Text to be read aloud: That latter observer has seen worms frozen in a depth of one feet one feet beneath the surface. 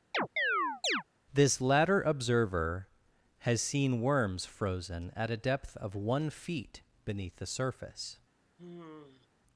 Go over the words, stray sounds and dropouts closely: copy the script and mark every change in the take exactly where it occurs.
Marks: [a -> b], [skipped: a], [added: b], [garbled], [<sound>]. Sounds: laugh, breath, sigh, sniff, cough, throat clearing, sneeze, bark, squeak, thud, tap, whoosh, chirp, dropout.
[chirp] [That -> This] latter observer has seen worms frozen [in -> at] a depth of one feet [skipped: one feet] beneath the surface. [sigh]